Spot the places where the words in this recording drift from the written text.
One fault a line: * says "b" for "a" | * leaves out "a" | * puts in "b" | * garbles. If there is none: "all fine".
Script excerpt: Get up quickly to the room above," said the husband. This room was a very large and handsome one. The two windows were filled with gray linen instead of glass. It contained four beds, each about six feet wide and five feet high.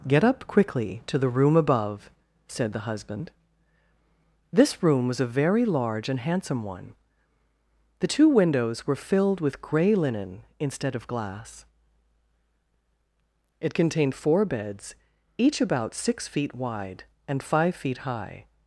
all fine